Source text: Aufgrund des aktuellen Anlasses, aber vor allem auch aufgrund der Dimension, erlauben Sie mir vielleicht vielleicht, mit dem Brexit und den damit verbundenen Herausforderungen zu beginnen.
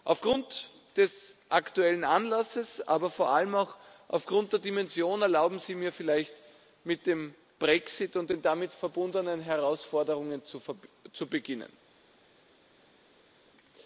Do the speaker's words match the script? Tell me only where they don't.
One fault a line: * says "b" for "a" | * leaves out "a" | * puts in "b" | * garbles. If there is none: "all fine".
* leaves out "vielleicht"